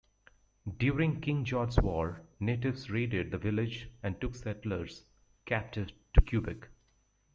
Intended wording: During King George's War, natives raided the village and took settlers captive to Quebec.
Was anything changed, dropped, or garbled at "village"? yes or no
no